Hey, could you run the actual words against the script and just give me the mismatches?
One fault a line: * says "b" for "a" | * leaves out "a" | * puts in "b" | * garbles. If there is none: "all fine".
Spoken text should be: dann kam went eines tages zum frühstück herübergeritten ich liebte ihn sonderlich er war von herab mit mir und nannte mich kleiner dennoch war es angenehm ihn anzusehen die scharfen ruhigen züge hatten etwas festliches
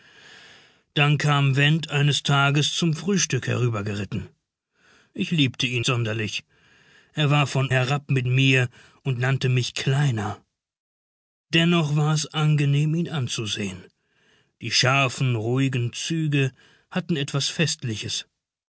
all fine